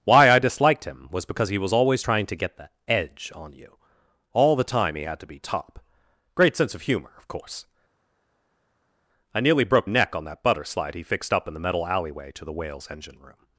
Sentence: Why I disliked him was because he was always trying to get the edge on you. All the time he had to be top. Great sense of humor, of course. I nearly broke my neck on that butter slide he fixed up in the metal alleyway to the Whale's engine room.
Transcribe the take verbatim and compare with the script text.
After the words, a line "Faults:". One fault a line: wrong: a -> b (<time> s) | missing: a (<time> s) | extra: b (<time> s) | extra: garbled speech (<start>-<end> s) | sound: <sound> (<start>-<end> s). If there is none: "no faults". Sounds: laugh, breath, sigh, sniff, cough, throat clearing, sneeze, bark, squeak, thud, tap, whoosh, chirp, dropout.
Why I disliked him was because he was always trying to get the edge on you. All the time he had to be top. Great sense of humor, of course. I nearly broke neck on that butter slide he fixed up in the metal alleyway to the Whale's engine room.
Faults:
missing: my (9.9 s)